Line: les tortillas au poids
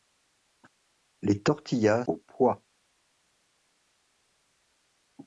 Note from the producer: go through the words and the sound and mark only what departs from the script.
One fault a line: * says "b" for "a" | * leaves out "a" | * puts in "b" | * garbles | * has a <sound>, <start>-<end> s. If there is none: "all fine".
all fine